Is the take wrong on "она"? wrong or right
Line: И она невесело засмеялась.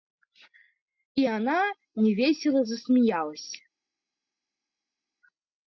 right